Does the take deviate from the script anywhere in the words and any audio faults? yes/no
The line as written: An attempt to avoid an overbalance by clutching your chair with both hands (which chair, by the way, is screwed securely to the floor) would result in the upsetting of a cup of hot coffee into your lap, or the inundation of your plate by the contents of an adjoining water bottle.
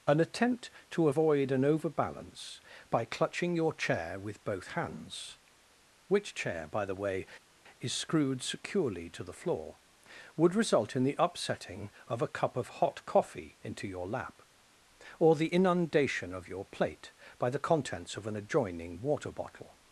no